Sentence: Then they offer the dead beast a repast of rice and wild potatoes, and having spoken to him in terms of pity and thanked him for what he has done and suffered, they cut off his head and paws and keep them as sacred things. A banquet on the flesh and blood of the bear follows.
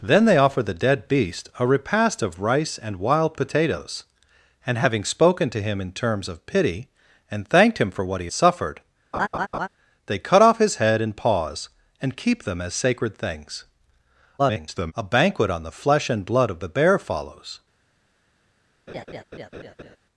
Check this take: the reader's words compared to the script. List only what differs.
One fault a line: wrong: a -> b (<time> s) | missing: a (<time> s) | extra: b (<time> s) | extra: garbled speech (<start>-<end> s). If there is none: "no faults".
missing: has done and (8.3 s)
extra: garbled speech (14.4-14.9 s)